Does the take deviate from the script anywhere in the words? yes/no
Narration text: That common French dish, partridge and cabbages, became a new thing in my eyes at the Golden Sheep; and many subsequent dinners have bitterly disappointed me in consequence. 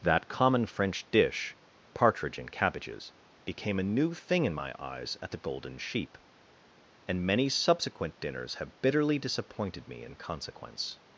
no